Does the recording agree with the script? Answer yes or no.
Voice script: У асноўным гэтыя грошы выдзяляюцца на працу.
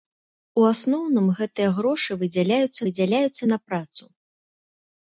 no